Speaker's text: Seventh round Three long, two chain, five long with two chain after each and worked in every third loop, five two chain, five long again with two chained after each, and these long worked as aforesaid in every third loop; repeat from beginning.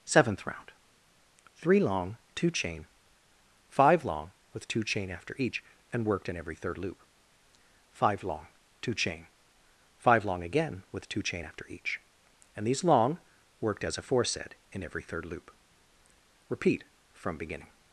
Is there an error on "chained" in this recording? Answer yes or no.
yes